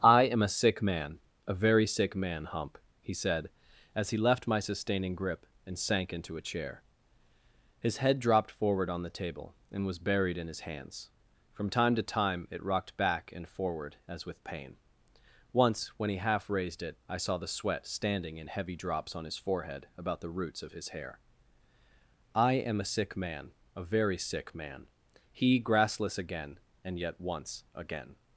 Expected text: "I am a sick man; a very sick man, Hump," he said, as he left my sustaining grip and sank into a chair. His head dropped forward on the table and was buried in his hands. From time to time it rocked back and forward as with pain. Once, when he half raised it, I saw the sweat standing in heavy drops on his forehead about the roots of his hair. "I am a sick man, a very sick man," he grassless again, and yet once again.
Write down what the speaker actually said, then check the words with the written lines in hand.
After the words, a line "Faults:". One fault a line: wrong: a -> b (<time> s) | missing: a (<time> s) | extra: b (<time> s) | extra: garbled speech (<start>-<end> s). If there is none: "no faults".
"I am a sick man; a very sick man, Hump," he said, as he left my sustaining grip and sank into a chair. His head dropped forward on the table and was buried in his hands. From time to time it rocked back and forward as with pain. Once, when he half raised it, I saw the sweat standing in heavy drops on his forehead about the roots of his hair. "I am a sick man, a very sick man," he grassless again, and yet once again.
Faults:
no faults